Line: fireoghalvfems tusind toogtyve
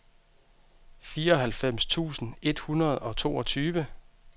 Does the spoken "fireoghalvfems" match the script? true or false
true